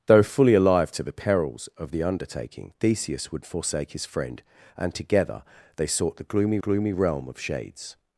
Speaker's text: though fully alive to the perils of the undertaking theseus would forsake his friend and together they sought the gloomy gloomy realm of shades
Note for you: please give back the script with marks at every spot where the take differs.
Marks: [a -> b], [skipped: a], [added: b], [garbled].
though fully alive to the perils of the undertaking theseus would forsake his friend and together they sought the gloomy gloomy realm of shades